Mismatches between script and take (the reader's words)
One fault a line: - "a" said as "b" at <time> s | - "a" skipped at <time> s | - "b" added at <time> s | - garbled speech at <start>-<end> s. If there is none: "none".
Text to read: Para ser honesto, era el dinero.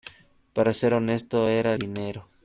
- "el" skipped at 1.7 s